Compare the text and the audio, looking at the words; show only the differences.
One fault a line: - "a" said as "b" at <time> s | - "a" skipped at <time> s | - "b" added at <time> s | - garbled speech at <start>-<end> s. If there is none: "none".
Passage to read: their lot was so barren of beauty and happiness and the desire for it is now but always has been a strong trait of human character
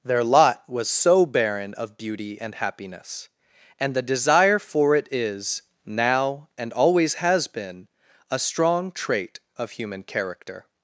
- "but" said as "and" at 6.6 s